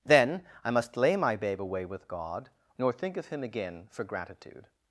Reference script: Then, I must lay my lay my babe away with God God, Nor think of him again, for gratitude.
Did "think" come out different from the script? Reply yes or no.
no